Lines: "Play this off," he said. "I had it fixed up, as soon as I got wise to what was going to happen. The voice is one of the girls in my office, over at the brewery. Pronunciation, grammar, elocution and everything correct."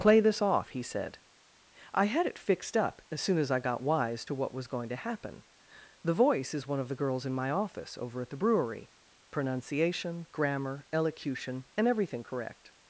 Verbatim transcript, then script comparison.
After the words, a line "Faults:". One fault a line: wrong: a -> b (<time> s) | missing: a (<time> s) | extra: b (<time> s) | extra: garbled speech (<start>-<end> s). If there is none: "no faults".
"Play this off," he said. "I had it fixed up, as soon as I got wise to what was going to happen. The voice is one of the girls in my office, over at the brewery. Pronunciation, grammar, elocution and everything correct."
Faults:
no faults